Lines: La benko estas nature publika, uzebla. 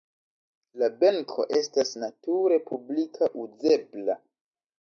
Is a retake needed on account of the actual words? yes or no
no